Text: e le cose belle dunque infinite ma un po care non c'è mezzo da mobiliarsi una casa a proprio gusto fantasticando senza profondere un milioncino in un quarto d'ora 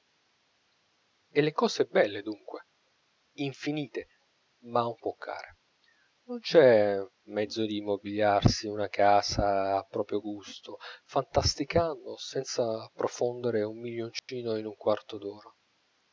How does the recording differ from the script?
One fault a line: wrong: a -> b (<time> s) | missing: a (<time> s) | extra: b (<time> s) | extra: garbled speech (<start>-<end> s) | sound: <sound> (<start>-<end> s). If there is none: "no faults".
wrong: da -> di (7.6 s)
sound: dropout (14.2-14.3 s)